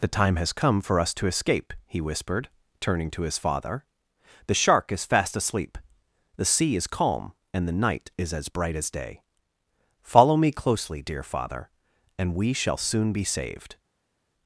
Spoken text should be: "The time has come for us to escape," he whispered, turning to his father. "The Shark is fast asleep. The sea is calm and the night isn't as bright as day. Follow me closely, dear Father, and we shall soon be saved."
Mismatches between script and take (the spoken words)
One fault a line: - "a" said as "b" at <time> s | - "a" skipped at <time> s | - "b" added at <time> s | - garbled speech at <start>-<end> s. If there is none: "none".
- "isn't" said as "is" at 8.2 s